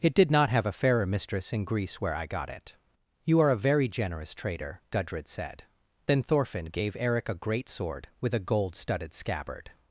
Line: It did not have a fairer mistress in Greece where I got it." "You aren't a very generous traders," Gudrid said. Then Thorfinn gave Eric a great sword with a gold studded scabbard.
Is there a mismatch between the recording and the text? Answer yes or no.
yes